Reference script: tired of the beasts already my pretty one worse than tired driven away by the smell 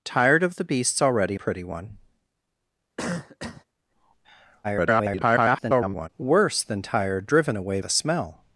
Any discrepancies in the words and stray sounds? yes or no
yes